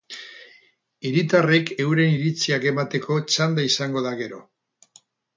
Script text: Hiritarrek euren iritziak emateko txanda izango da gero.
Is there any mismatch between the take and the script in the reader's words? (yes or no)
no